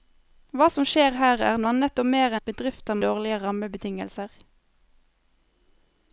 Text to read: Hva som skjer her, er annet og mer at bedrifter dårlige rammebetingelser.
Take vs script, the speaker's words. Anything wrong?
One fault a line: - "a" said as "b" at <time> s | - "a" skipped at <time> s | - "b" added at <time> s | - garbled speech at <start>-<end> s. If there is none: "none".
none